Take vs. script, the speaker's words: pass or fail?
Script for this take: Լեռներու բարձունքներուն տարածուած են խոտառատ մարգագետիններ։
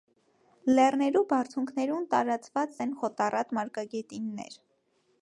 pass